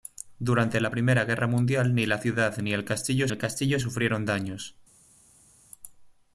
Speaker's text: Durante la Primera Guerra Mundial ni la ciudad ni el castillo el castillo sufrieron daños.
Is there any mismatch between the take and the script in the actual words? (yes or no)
no